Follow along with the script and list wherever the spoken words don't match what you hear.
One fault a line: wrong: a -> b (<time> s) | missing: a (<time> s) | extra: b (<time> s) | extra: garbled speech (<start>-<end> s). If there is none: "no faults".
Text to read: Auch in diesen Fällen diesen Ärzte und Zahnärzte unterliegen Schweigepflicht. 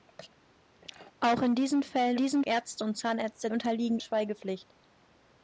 no faults